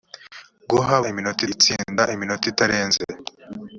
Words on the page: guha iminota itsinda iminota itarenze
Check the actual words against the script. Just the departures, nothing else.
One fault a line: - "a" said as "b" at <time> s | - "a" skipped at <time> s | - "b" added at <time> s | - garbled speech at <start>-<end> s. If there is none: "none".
none